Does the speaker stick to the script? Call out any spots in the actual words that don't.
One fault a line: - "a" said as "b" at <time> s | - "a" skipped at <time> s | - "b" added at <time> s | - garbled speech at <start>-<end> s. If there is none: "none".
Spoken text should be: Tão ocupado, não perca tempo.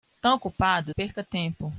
- "não" skipped at 0.9 s